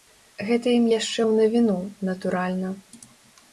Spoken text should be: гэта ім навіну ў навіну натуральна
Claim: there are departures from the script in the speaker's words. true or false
true